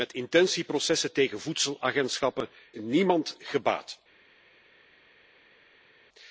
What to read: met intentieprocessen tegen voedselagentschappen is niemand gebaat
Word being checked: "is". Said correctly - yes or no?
no